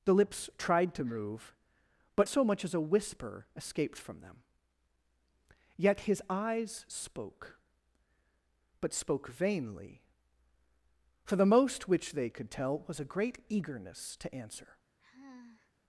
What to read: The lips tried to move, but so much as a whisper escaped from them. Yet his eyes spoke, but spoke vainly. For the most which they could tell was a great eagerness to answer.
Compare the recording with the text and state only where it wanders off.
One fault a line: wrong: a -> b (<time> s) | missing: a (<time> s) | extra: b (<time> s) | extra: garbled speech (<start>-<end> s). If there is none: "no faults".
no faults